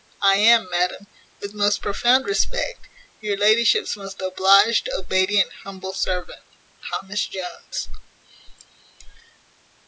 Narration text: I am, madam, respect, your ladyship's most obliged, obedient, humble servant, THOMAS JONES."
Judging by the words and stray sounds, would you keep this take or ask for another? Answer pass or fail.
fail